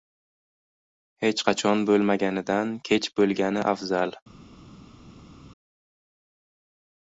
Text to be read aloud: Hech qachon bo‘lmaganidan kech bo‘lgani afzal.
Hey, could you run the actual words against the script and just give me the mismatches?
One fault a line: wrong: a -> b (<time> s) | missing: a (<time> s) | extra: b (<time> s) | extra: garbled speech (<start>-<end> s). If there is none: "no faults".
no faults